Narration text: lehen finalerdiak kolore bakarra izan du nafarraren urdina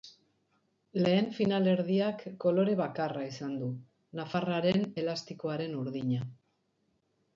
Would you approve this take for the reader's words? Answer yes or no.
no